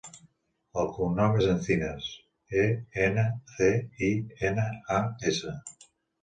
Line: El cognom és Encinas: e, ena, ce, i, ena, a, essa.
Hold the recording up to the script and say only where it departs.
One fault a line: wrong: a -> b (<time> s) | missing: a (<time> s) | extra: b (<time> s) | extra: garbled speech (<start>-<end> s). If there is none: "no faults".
no faults